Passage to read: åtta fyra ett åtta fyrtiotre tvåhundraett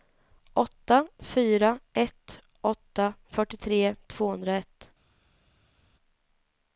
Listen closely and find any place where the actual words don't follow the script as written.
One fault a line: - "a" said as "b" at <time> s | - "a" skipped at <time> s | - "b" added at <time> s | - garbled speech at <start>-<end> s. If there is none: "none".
none